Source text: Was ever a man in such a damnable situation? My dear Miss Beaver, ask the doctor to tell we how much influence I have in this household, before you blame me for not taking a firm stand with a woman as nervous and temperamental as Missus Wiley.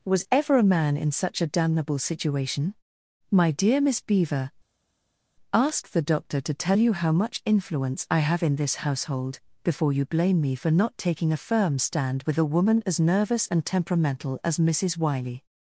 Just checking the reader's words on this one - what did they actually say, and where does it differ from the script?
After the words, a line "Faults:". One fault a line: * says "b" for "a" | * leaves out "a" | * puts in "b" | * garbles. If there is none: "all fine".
Was ever a man in such a damnable situation? My dear Miss Beaver, ask the doctor to tell you how much influence I have in this household, before you blame me for not taking a firm stand with a woman as nervous and temperamental as Missus Wiley.
Faults:
* says "you" for "we"